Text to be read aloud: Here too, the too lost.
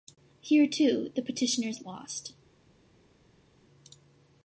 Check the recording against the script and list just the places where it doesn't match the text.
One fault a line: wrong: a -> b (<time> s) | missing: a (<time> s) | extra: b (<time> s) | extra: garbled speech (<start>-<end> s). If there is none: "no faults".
wrong: too -> petitioners (1.2 s)